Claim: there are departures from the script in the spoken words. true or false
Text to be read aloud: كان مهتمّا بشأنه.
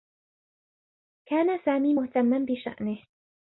true